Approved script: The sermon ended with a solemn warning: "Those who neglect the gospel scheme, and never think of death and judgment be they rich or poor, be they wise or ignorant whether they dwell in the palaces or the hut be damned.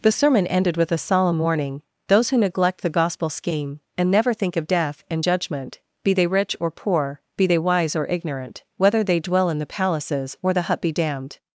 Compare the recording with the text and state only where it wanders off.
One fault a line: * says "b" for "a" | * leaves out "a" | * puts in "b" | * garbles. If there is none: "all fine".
all fine